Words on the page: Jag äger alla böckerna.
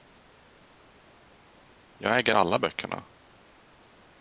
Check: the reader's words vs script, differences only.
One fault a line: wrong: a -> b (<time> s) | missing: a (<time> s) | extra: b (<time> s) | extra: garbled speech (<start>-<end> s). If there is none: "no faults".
no faults